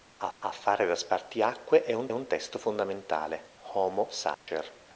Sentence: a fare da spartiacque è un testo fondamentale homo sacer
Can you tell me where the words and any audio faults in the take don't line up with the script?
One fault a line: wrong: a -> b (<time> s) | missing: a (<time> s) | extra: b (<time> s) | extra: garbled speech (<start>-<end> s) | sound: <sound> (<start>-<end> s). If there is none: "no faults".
extra: a (0.4 s)
extra: un (2.1 s)
sound: dropout (4.3-4.5 s)